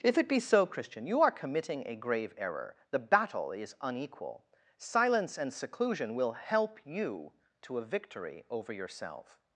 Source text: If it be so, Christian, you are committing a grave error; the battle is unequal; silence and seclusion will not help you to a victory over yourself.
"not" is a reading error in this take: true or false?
true